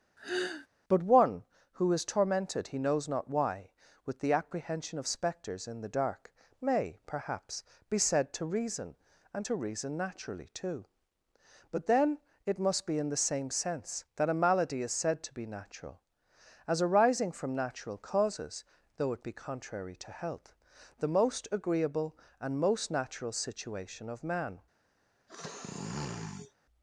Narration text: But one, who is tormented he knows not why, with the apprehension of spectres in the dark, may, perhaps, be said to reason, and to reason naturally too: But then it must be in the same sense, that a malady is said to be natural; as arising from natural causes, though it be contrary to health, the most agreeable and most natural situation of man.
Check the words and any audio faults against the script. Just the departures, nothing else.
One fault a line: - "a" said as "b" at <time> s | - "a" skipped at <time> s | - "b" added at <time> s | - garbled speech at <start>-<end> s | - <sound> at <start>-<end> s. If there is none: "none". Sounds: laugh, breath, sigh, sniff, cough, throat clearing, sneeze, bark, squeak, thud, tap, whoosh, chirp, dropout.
- sigh at 0.2-0.7 s
- sniff at 25.3-26.5 s